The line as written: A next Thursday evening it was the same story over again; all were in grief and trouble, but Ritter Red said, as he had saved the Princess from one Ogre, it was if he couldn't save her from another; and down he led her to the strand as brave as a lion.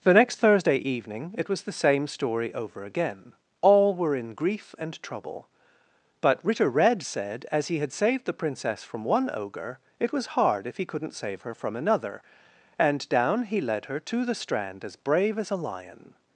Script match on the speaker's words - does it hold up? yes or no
no